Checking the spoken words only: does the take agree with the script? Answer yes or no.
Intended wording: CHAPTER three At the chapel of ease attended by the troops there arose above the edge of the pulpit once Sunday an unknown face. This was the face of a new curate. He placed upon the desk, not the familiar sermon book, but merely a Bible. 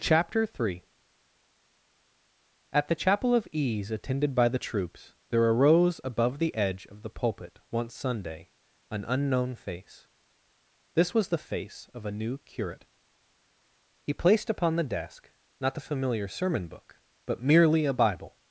yes